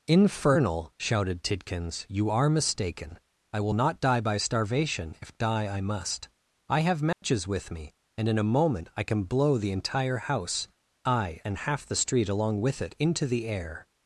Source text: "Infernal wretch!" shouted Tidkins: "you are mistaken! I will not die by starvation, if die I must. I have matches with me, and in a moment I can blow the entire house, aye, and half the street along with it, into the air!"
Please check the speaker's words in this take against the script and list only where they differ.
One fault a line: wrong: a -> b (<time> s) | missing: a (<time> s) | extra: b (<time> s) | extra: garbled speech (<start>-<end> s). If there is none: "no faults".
missing: wretch (0.9 s)